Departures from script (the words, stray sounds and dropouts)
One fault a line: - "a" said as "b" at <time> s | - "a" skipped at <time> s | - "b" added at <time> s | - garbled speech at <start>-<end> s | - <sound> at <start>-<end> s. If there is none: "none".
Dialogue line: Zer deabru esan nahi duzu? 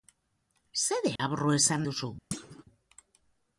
- dropout at 1.2-1.2 s
- "nahi" skipped at 1.9 s
- thud at 2.3-2.6 s